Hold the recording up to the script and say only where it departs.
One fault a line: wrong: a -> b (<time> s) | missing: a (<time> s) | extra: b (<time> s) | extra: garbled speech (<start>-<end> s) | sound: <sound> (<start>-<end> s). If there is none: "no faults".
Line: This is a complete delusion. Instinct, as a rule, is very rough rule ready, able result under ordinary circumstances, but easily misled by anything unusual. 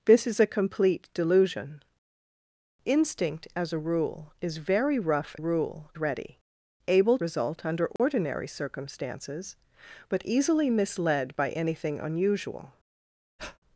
sound: dropout (8.0-8.0 s)
sound: breath (13.4-13.6 s)